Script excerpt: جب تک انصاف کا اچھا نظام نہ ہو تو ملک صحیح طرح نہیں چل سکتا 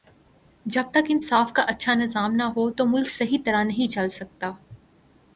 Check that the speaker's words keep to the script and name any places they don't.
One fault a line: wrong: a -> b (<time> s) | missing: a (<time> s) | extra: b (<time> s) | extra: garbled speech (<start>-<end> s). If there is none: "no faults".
no faults